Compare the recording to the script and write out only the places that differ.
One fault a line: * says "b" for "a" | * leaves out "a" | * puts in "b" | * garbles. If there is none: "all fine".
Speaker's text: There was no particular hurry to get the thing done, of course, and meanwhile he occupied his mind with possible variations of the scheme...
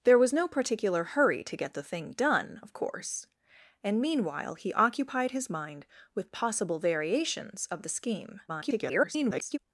* garbles